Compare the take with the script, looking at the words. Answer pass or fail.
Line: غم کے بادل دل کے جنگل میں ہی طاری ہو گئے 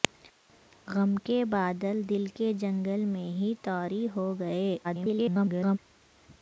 fail